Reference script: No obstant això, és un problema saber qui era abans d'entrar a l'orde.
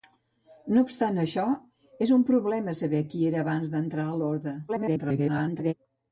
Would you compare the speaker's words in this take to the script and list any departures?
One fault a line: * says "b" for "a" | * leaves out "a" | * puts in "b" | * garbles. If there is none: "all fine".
* garbles